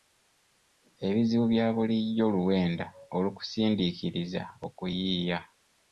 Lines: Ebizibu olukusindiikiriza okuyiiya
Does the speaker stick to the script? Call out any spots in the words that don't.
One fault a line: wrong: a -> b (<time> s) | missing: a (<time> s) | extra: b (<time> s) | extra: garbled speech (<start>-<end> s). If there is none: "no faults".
extra: bya bulijjo luwenda (1.5 s)